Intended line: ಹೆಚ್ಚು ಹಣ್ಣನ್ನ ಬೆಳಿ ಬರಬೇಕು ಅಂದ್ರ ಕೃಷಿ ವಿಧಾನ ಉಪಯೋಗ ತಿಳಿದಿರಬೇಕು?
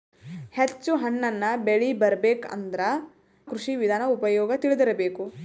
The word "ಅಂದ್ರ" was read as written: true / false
true